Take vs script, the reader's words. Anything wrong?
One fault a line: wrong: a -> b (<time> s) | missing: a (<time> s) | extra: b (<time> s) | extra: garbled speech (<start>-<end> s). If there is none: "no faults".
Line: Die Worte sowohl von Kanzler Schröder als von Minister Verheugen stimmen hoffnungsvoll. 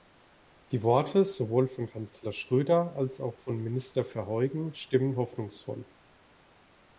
extra: auch (3.2 s)